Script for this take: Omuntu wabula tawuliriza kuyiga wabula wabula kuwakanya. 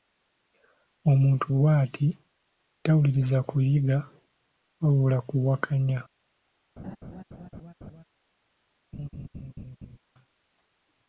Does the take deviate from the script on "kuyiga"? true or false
false